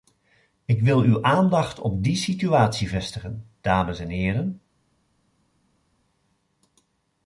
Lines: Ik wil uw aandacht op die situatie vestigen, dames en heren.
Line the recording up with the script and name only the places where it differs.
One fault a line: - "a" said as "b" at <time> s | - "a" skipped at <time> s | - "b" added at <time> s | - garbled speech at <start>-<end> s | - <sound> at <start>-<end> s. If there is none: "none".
none